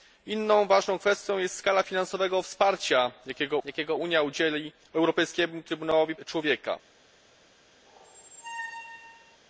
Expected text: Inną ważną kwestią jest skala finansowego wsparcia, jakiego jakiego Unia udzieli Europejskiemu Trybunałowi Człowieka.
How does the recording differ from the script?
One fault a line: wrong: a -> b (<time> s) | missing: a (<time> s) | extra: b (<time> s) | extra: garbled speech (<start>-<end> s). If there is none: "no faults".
no faults